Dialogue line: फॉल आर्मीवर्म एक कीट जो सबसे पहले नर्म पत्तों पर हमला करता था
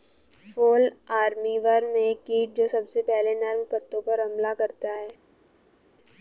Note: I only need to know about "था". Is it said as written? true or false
false